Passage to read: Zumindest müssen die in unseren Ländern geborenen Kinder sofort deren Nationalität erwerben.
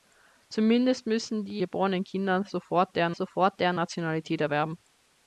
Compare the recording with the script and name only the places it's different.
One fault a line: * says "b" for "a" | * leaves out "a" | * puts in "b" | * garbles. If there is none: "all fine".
* says "geborenen Kinder sofort deren" for "in unseren Ländern geborenen Kinder"